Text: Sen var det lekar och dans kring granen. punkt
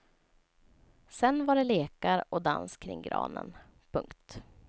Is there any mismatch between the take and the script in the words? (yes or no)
no